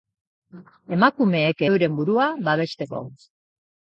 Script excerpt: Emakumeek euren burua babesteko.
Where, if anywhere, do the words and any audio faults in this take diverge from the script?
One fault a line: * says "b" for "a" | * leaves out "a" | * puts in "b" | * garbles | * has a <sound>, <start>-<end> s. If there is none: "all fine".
all fine